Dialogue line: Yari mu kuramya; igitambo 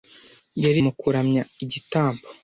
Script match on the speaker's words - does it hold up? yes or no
yes